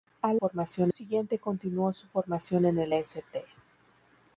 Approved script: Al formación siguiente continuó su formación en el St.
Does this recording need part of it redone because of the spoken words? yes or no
no